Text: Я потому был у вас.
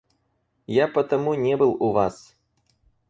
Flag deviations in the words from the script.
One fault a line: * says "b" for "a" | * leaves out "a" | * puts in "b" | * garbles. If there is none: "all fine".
* puts in "не"